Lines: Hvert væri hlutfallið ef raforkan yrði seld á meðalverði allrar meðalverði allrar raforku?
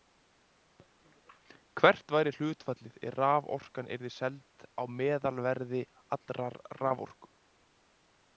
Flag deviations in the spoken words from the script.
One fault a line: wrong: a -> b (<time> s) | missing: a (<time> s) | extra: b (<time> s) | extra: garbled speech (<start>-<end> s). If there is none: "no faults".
missing: meðalverði allrar (6.6 s)